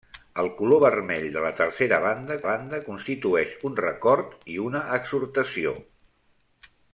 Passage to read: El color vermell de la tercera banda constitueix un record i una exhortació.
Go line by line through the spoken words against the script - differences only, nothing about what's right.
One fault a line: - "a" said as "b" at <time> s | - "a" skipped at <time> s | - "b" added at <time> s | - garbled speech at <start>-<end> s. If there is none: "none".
- "banda" added at 2.5 s